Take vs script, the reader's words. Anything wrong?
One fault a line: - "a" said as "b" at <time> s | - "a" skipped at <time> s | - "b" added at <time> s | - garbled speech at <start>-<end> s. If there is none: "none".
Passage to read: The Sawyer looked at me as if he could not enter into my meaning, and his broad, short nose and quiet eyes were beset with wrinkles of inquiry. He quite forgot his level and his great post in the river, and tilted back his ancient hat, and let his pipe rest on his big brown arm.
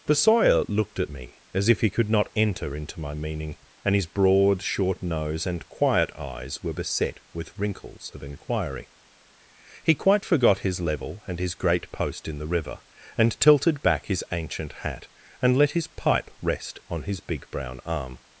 none